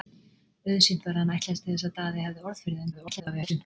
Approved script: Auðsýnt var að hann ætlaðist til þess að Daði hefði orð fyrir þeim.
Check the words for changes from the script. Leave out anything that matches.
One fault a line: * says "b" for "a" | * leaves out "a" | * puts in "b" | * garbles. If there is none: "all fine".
* garbles